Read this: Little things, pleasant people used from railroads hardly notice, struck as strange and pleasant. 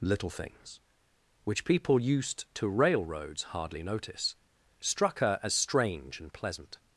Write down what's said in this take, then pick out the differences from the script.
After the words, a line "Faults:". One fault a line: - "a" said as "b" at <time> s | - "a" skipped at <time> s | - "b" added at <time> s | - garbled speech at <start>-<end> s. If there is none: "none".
Little things, which people used to railroads hardly notice, struck her as strange and pleasant.
Faults:
- "pleasant" said as "which" at 1.4 s
- "from" said as "to" at 2.5 s
- "her" added at 5.2 s